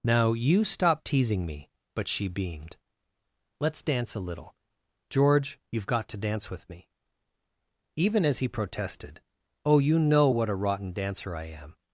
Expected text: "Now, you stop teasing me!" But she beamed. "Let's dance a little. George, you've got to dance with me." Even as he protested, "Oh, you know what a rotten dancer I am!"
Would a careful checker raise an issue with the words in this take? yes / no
no